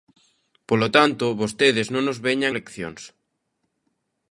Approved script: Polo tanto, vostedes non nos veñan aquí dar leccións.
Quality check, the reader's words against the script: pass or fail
fail